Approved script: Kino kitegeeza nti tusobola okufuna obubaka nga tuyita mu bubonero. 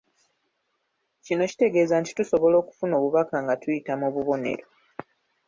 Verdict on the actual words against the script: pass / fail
pass